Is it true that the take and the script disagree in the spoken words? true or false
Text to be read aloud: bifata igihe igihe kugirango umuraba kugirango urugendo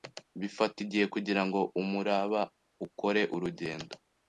true